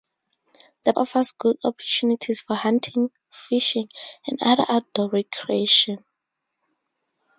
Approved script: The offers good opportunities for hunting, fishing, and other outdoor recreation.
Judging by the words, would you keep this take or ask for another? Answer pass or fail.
pass